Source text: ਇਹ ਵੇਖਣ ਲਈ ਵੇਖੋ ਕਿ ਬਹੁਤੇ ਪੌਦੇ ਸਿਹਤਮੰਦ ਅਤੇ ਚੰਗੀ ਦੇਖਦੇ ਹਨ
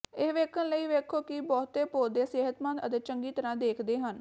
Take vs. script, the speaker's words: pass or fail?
fail